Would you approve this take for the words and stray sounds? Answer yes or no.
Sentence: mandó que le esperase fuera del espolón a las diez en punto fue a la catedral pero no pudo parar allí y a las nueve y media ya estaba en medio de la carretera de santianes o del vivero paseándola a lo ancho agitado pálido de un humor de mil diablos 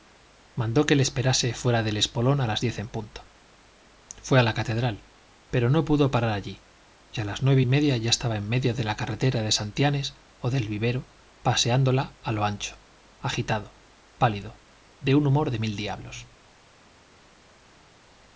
yes